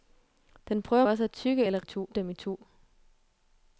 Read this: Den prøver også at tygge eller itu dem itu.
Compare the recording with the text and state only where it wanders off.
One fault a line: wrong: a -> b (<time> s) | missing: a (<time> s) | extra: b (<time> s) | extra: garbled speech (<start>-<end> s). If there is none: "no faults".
no faults